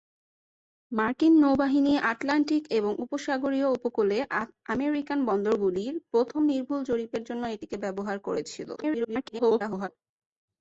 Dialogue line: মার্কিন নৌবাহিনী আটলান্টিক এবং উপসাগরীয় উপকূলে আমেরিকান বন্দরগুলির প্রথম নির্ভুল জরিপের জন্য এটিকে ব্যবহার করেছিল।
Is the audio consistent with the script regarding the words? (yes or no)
no